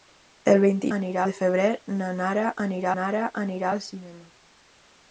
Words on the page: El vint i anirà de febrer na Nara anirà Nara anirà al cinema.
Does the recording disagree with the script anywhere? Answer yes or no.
no